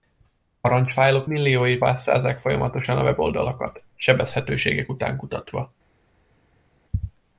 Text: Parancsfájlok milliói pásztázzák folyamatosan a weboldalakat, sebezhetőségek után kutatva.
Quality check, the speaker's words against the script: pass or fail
pass